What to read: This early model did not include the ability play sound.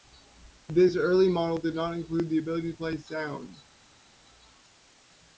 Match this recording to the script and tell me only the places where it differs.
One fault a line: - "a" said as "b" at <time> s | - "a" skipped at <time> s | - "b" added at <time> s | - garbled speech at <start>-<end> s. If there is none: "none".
none